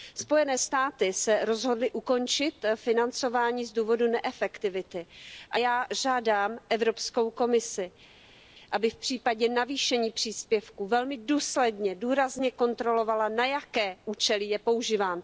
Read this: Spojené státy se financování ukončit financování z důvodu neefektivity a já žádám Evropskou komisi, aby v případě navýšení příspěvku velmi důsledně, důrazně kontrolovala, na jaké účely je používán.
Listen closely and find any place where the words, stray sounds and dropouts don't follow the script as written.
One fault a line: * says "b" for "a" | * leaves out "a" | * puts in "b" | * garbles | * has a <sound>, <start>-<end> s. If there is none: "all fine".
* says "rozhodly" for "financování"